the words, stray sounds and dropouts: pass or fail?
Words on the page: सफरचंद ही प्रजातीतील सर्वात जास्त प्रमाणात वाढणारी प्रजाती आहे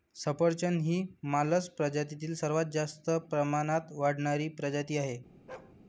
fail